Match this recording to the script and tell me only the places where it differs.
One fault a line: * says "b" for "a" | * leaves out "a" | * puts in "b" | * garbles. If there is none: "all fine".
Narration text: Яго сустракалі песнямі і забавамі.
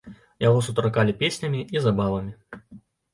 all fine